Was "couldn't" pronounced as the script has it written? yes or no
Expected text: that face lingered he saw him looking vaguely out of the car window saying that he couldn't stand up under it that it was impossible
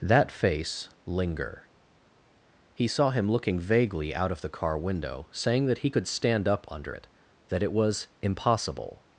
no